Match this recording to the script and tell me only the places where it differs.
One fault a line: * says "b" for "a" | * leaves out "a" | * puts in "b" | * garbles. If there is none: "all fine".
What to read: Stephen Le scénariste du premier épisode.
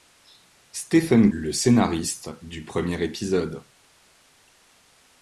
all fine